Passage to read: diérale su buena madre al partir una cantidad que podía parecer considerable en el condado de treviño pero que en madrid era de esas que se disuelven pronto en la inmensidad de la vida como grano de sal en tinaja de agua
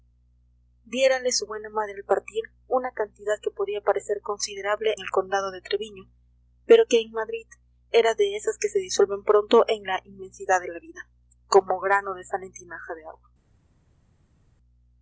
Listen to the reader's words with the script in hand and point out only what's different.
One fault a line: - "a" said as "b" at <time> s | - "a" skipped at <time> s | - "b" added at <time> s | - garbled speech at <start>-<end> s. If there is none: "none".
- "en" skipped at 5.0 s